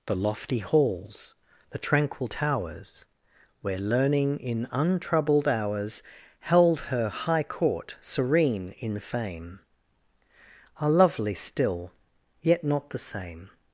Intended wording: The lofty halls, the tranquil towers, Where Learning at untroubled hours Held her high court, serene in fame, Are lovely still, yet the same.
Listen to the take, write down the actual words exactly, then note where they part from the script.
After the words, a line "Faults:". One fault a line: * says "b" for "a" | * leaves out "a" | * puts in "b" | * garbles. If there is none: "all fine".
The lofty halls, the tranquil towers, Where Learning in untroubled hours Held her high court, serene in fame, Are lovely still, yet not the same.
Faults:
* says "in" for "at"
* puts in "not"